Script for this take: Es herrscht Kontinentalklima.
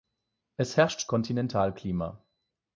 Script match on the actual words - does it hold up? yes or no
yes